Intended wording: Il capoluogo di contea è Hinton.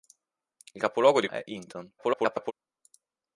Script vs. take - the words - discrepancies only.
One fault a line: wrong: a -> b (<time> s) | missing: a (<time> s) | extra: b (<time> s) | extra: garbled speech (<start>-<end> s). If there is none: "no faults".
missing: contea (1.3 s)
extra: garbled speech (2.0-2.5 s)